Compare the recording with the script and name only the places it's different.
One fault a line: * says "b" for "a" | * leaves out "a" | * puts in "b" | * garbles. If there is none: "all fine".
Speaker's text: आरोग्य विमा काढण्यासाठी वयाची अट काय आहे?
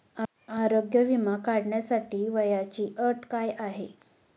all fine